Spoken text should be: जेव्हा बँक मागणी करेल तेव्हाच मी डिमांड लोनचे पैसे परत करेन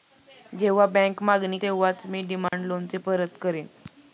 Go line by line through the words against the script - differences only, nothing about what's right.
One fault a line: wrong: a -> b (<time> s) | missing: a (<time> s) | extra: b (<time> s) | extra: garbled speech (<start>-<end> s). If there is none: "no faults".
missing: करेल (1.6 s)
missing: पैसे (3.0 s)